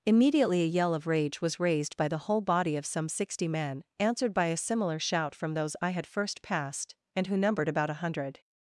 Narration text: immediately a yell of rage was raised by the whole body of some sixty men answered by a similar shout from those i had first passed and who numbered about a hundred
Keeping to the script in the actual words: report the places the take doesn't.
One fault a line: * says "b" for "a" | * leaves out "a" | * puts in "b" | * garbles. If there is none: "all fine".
all fine